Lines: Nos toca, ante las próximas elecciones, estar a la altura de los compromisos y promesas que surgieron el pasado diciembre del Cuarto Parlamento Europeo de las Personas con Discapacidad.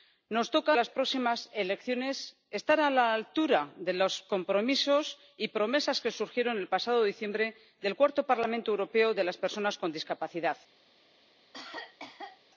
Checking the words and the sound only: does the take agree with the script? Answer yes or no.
no